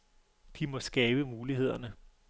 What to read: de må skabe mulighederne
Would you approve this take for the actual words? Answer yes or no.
yes